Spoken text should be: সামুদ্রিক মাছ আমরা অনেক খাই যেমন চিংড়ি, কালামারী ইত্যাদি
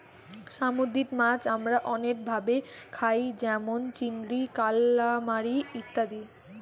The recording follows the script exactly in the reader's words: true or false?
false